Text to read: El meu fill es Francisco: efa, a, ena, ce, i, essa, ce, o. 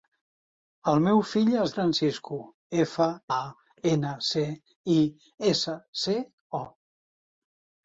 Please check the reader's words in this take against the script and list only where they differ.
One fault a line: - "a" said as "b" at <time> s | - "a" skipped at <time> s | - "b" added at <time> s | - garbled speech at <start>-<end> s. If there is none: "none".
none